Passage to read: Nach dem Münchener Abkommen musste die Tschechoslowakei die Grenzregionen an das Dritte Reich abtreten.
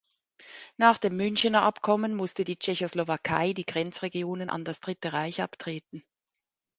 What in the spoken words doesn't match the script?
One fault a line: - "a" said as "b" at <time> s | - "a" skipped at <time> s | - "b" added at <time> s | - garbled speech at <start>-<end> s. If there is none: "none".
none